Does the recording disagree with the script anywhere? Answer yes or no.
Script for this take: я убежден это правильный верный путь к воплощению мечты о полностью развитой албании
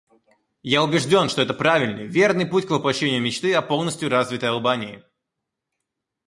yes